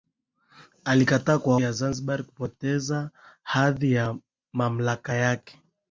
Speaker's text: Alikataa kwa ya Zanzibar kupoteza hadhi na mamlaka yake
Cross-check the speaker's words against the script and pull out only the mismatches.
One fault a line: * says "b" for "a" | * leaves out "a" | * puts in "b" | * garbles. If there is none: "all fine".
all fine